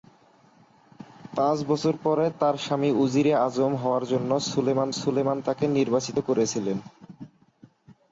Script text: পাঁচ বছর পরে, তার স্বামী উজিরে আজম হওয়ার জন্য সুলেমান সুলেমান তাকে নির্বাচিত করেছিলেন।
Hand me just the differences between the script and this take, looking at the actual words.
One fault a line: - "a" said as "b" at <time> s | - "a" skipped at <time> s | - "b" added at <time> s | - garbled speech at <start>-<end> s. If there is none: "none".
none